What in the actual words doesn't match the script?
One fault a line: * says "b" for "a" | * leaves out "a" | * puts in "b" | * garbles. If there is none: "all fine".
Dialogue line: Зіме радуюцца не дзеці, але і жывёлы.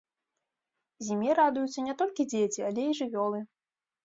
* puts in "толькі"